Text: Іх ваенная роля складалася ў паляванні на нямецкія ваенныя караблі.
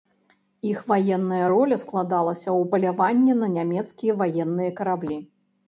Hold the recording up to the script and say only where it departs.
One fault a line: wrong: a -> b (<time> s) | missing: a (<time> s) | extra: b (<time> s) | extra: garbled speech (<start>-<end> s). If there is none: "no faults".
no faults